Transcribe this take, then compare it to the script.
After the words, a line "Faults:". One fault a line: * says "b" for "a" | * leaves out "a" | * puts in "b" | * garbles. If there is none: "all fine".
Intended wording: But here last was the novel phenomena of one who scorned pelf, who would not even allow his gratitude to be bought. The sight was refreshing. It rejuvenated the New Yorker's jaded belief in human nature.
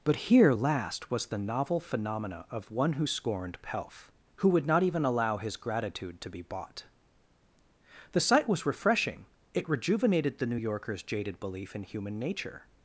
But here last was the novel phenomena of one who scorned pelf, who would not even allow his gratitude to be bought. The sight was refreshing. It rejuvenated the New Yorker's jaded belief in human nature.
Faults:
all fine